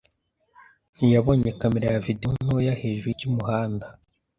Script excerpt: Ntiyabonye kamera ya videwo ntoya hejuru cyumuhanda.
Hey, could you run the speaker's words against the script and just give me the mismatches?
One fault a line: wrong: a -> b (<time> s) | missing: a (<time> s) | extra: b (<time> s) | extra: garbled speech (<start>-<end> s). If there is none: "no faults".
no faults